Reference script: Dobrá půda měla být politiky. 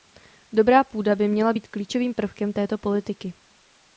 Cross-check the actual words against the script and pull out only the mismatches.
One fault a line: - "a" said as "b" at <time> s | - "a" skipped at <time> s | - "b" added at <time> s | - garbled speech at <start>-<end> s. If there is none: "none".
- "by" added at 1.1 s
- "klíčovým prvkem této" added at 1.7 s